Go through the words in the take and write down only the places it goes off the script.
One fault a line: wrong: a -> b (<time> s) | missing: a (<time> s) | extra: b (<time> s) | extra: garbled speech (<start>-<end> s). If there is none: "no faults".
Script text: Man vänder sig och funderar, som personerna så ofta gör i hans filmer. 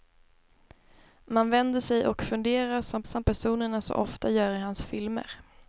extra: som (3.0 s)